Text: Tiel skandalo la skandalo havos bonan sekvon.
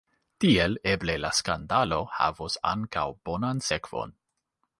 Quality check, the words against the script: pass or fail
fail